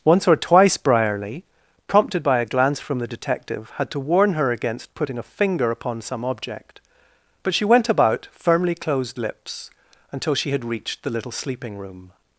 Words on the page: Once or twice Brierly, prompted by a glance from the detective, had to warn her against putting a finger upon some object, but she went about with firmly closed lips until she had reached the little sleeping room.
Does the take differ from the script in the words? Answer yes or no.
yes